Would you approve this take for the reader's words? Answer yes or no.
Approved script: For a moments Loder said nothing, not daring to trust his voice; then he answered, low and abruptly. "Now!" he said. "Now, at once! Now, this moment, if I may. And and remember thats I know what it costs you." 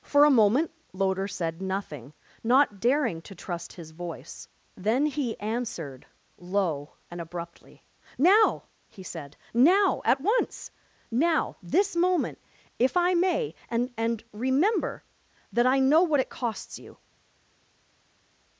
no